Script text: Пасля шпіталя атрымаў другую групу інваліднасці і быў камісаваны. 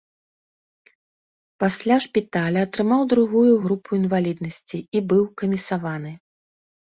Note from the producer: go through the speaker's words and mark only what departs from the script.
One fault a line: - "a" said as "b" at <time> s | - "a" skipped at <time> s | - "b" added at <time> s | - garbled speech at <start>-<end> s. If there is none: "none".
none